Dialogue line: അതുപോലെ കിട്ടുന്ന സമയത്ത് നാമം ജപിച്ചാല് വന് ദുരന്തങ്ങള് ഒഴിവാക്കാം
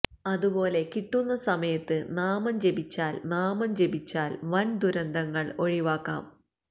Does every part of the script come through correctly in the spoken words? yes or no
no